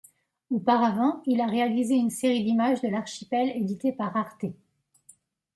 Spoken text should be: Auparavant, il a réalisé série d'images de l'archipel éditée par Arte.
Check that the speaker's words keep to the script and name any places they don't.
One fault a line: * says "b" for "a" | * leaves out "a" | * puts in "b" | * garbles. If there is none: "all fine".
* puts in "une"